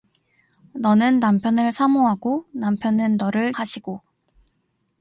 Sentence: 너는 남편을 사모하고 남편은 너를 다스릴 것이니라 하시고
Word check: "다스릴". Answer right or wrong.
wrong